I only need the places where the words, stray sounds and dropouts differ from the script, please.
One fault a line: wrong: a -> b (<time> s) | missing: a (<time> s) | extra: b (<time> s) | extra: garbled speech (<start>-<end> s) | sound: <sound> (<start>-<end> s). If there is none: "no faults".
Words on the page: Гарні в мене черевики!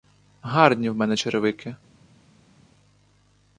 no faults